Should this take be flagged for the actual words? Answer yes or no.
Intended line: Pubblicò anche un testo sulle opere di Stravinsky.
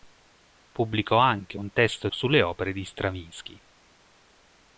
no